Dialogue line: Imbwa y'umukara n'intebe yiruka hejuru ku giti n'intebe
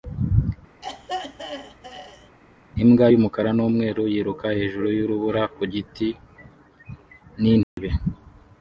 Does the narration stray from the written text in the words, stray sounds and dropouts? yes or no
yes